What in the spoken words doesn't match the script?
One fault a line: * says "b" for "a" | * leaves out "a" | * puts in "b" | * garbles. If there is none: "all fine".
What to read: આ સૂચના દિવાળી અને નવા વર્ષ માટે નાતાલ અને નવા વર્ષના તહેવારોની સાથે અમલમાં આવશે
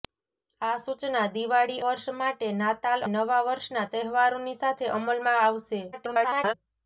* leaves out "અને નવા"
* leaves out "અને"
* garbles